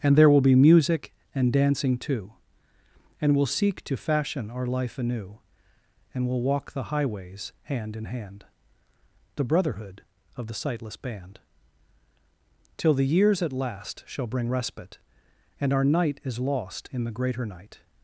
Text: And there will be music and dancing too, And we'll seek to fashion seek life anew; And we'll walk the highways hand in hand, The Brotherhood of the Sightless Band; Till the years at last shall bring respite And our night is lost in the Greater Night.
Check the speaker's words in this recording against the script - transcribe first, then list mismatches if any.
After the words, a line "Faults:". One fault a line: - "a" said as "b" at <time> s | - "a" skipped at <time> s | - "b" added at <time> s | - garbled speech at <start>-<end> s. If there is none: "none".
And there will be music and dancing too, And we'll seek to fashion our life anew; And we'll walk the highways hand in hand, The Brotherhood of the Sightless Band; Till the years at last shall bring respite And our night is lost in the Greater Night.
Faults:
- "seek" said as "our" at 4.5 s